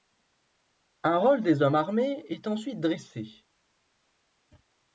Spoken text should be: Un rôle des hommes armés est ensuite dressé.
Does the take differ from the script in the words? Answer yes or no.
no